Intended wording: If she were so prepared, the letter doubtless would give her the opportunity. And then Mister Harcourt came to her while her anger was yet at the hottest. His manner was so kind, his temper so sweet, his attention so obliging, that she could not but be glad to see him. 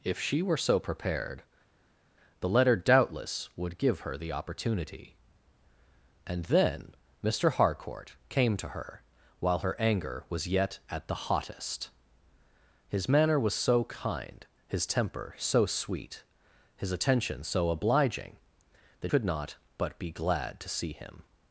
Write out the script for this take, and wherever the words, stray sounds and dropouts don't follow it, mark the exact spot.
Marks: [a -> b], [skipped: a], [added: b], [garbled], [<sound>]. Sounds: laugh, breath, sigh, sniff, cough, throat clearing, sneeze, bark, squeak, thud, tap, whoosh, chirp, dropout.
If she were so prepared, the letter doubtless would give her the opportunity. And then Mister Harcourt came to her while her anger was yet at the hottest. His manner was so kind, his temper so sweet, his attention so obliging, that [skipped: she] could not but be glad to see him.